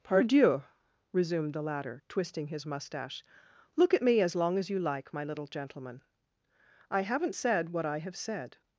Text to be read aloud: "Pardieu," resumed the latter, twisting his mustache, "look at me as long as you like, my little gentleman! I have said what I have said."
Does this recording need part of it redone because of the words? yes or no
yes